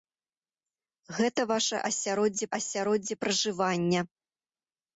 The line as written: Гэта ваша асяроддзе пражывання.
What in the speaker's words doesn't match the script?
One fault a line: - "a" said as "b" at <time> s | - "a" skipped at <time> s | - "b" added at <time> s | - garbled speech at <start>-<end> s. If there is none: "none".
- "асяроддзе" added at 2.6 s